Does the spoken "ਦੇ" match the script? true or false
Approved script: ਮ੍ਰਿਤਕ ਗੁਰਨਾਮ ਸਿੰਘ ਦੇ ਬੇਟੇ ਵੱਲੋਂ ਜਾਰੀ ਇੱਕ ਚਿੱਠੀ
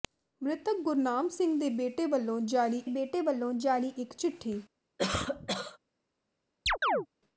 true